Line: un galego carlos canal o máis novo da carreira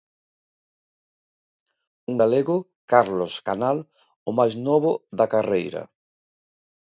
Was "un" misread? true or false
false